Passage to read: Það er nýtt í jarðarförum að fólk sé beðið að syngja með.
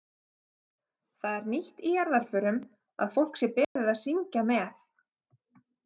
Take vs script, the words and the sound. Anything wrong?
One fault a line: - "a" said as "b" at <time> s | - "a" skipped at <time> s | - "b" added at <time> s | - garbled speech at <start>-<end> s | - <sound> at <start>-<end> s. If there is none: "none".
- dropout at 3.6-3.8 s